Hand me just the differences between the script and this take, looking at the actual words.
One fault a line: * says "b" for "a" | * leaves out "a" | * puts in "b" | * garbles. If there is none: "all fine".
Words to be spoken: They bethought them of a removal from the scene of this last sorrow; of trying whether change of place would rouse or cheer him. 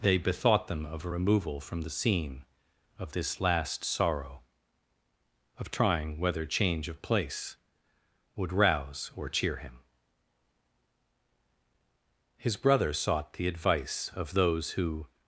* puts in "His brother sought the advice of those who"